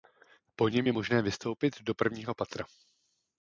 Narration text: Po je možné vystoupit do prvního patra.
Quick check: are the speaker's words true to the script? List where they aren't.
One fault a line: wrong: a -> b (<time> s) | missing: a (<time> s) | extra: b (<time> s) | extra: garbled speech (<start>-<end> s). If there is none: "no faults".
extra: něm (0.7 s)